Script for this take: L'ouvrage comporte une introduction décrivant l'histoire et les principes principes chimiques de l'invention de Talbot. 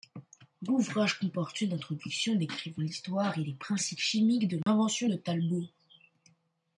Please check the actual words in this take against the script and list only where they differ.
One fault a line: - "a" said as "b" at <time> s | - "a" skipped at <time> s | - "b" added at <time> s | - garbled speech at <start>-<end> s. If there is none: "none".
- "principes" skipped at 4.0 s